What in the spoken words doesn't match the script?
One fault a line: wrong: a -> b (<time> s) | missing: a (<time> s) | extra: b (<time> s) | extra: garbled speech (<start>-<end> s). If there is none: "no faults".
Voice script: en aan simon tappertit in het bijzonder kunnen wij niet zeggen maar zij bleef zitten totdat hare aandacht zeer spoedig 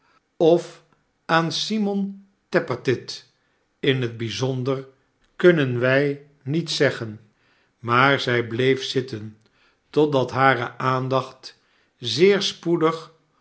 wrong: en -> of (0.4 s)